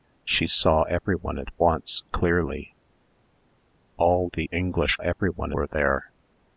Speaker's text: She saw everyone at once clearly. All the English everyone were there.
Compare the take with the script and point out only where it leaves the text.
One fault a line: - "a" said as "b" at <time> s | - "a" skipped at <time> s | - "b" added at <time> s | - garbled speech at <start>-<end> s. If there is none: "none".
none